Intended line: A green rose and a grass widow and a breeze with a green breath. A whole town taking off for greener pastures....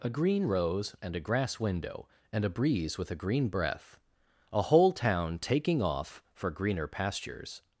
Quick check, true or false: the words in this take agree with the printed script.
false